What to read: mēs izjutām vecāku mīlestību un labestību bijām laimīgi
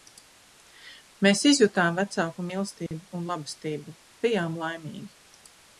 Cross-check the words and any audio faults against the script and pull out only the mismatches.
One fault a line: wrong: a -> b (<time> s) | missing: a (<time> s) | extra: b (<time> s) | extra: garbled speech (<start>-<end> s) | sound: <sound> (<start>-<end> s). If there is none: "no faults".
sound: dropout (2.9-2.9 s)